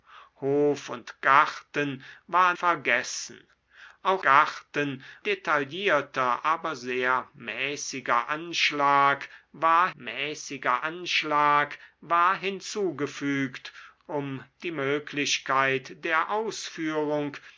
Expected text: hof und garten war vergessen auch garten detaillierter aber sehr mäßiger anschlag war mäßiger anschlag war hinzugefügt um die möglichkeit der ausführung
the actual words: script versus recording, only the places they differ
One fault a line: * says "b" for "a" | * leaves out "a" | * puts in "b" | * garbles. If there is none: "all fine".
all fine